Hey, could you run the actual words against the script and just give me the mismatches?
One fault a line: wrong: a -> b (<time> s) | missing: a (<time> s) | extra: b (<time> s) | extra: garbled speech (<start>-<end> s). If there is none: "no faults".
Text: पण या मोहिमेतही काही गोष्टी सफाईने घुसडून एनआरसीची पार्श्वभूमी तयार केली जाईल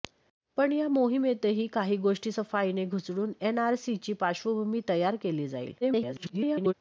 extra: garbled speech (5.8-6.7 s)